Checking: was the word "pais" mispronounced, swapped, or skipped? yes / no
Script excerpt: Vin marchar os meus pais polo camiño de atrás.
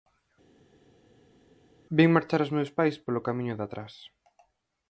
no